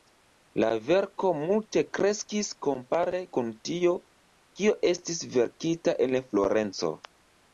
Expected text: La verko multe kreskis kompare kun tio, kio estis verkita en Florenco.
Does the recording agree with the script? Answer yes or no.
yes